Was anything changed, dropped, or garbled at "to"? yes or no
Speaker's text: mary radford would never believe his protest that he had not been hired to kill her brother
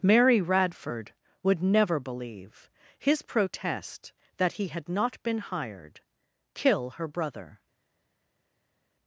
yes